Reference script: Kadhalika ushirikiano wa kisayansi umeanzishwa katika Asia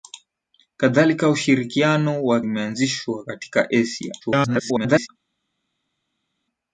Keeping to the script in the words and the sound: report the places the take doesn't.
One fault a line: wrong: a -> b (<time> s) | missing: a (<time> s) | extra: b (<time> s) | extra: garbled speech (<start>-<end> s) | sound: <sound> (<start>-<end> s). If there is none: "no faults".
missing: kisayansi (2.4 s)
extra: garbled speech (4.2-5.1 s)